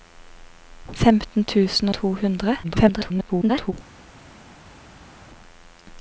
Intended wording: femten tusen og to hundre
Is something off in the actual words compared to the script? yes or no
yes